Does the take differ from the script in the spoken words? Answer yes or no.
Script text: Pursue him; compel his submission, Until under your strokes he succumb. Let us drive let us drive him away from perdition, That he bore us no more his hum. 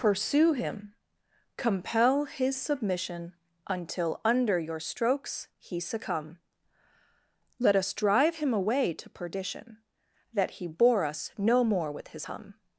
yes